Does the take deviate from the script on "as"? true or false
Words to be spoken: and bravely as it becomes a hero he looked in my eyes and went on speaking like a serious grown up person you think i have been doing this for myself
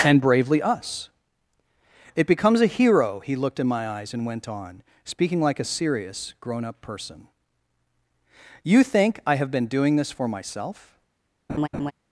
true